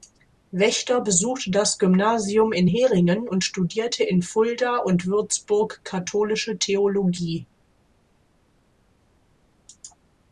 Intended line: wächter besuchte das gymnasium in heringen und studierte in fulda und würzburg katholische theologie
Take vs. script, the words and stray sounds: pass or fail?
pass